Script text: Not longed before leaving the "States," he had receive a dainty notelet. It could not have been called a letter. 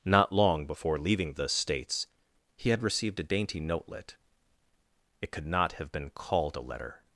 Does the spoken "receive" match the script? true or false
false